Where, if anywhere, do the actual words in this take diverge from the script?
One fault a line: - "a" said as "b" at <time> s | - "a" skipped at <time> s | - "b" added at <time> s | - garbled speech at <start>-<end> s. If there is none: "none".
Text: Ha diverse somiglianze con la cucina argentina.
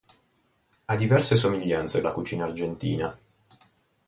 - "con" skipped at 2.0 s